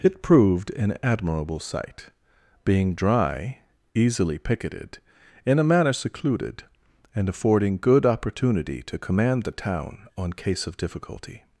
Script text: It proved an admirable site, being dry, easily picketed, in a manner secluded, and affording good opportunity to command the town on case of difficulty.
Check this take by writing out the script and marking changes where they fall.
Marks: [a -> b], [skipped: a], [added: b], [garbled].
It proved an admirable site, being dry, easily picketed, in a manner secluded, and affording good opportunity to command the town on case of difficulty.